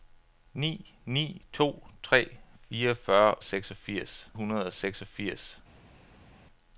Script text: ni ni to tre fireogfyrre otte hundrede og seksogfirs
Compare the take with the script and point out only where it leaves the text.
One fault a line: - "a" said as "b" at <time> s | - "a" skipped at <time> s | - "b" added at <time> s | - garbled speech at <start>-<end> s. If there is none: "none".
- "otte" said as "seksogfirs" at 3.4 s